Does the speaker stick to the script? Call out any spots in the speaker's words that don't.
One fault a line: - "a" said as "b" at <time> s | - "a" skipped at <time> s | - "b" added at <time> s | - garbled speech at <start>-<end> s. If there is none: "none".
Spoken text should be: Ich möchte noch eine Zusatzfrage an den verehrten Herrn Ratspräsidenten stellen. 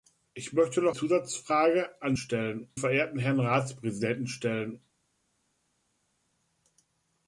- "eine" skipped at 0.9 s
- "den" said as "stellen" at 2.2 s